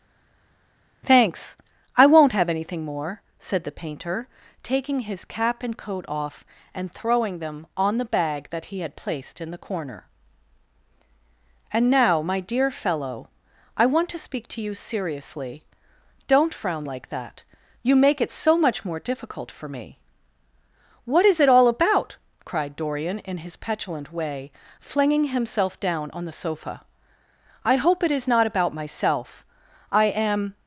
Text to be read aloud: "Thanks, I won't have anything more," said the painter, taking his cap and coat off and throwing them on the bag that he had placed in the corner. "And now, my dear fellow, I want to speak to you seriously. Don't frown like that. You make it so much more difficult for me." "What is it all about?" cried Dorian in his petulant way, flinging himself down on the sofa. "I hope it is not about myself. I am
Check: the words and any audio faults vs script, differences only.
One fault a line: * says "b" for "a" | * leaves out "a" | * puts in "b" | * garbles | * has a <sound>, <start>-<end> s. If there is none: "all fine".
all fine